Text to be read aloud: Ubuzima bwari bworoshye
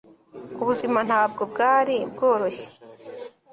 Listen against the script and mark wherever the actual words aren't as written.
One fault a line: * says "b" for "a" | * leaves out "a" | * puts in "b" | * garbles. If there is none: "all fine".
* puts in "ntabwo"